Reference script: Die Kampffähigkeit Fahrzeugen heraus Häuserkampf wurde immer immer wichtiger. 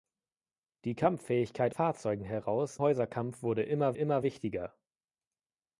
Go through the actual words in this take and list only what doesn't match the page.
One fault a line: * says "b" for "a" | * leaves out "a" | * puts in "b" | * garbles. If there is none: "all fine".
all fine